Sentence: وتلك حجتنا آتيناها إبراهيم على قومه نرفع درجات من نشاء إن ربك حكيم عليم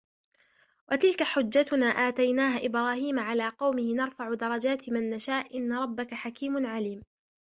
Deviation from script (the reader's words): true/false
false